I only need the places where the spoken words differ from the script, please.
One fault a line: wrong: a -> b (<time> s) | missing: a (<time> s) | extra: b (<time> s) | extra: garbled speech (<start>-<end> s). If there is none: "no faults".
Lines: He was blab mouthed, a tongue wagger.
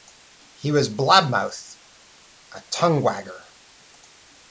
no faults